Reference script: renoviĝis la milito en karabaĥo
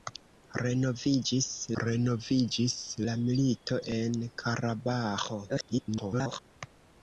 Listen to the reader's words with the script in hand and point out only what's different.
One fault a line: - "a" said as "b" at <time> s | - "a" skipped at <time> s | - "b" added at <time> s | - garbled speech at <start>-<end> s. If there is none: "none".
- "renoviĝis" added at 1.8 s
- garbled speech at 5.5-6.4 s